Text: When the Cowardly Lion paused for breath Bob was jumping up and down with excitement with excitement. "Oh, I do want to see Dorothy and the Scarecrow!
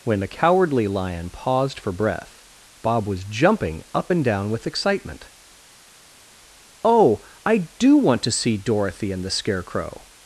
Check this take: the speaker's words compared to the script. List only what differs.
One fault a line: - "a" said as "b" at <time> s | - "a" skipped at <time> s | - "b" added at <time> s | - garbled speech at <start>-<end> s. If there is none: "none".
- "with excitement" skipped at 5.3 s